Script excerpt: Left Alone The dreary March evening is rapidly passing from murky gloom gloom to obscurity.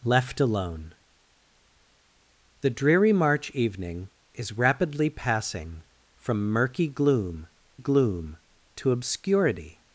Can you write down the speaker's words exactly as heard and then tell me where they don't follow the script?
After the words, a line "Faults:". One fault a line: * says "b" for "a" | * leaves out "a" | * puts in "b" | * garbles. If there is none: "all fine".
Left Alone The dreary March evening is rapidly passing from murky gloom gloom to obscurity.
Faults:
all fine